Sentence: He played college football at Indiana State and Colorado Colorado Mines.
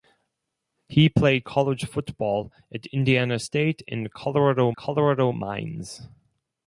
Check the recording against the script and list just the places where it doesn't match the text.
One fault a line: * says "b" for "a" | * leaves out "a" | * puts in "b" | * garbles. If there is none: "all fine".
all fine